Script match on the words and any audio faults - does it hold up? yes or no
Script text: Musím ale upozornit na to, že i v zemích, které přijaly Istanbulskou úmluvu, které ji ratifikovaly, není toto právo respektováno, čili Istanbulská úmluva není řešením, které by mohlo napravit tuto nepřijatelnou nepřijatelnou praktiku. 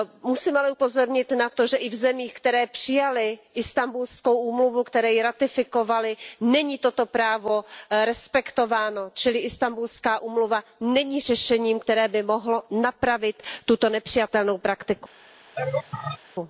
no